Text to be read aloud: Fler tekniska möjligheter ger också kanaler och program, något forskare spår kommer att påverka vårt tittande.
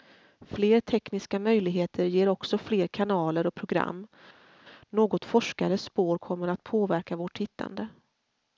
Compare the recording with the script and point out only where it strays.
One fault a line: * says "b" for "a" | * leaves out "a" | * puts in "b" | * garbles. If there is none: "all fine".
* puts in "fler"